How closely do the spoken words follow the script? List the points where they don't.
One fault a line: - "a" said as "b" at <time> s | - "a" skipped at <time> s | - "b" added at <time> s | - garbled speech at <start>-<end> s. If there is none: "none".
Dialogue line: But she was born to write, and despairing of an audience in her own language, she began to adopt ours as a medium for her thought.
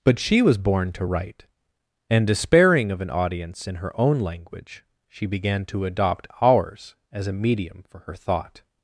none